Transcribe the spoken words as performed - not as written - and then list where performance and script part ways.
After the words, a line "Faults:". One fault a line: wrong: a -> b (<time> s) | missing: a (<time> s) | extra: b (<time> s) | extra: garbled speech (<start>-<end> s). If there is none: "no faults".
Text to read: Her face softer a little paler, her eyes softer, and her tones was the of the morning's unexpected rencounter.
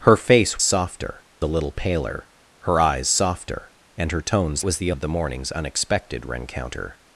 Her face softer a little paler, her eyes softer, and her tones was the of the morning's unexpected rencounter.
Faults:
no faults